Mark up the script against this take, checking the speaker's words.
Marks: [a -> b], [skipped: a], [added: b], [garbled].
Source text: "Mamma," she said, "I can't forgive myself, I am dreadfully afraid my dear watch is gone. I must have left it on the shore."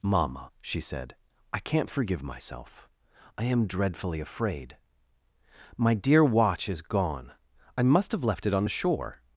"Mamma," she said, "I can't forgive myself, I am dreadfully afraid my dear watch is gone. I must have left it on the shore."